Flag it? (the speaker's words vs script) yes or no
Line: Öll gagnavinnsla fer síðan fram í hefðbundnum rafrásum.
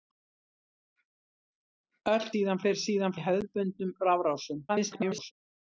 yes